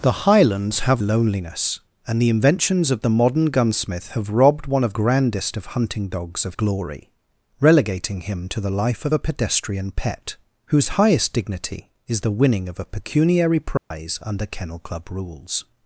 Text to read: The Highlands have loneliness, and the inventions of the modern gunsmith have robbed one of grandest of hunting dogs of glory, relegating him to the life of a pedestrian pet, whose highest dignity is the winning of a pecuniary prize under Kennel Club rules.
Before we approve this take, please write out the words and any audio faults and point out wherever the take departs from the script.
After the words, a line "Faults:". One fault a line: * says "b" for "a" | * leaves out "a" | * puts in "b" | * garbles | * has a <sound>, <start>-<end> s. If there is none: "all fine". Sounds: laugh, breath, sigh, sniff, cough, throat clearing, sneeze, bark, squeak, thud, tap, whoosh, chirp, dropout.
The Highlands have loneliness, and the inventions of the modern gunsmith have robbed one of grandest of hunting dogs of glory, relegating him to the life of a pedestrian pet, whose highest dignity is the winning of a pecuniary prize under Kennel Club rules.
Faults:
* has a dropout, 13.8-13.9 s